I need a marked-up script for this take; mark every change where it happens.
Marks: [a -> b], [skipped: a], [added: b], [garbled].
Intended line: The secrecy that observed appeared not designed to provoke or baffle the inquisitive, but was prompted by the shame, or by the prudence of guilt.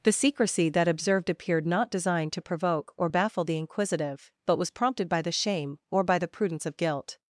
The secrecy that observed appeared not designed to provoke or baffle the inquisitive, but was prompted by the shame, or by the prudence of guilt.